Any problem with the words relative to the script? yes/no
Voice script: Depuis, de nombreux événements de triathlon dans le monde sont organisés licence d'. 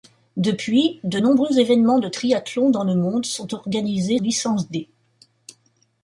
no